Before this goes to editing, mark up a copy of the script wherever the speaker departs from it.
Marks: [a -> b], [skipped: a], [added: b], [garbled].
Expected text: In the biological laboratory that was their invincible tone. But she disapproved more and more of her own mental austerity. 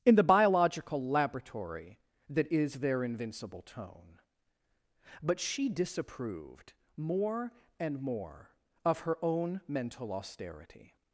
In the biological laboratory that [was -> is] their invincible tone. But she disapproved more and more of her own mental austerity.